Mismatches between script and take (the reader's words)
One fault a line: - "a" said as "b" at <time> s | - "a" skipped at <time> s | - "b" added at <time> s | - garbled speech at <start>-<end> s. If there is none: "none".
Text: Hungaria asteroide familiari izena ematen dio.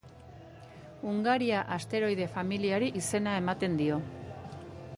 none